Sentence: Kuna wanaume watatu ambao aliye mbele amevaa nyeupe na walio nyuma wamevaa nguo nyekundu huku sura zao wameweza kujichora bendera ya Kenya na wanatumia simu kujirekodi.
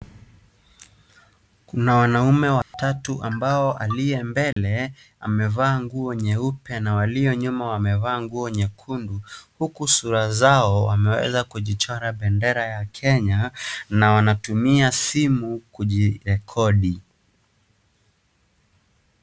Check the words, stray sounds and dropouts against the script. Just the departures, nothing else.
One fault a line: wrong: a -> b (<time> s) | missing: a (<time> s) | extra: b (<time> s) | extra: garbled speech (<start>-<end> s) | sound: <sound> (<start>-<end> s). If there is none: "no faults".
sound: dropout (2.6-2.7 s)
sound: dropout (4.5-4.6 s)
extra: nguo (5.8 s)